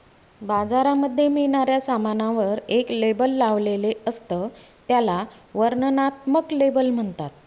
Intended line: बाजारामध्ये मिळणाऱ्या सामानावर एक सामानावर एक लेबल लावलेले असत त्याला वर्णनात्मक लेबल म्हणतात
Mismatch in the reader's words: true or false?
true